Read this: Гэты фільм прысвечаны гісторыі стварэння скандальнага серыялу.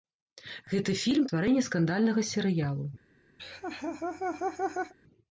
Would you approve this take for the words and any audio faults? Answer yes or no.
no